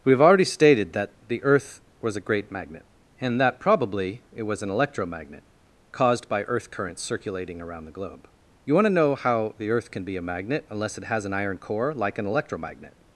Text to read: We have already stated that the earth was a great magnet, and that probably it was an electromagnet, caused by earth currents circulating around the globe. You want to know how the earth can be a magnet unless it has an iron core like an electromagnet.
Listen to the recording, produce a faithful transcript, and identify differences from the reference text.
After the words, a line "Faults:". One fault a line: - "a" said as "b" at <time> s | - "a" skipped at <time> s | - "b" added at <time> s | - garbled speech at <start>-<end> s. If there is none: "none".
We have already stated that the earth was a great magnet, and that probably it was an electromagnet, caused by earth currents circulating around the globe. You want to know how the earth can be a magnet unless it has an iron core like an electromagnet.
Faults:
none